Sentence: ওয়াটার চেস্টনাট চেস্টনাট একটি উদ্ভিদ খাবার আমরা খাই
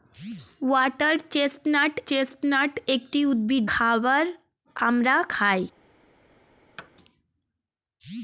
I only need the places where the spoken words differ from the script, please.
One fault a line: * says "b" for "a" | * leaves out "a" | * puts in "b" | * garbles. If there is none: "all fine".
all fine